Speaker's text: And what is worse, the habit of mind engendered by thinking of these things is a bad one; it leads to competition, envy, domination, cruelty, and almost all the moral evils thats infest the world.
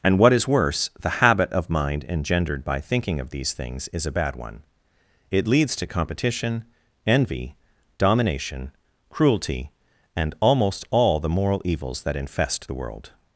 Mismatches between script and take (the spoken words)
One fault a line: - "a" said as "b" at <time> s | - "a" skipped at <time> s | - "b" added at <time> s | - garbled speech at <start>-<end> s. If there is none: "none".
- "thats" said as "that" at 12.0 s